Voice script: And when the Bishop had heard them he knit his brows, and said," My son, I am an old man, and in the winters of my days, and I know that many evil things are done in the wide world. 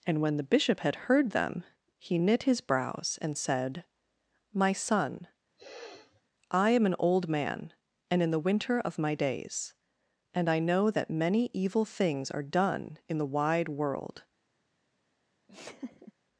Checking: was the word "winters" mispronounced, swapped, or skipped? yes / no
yes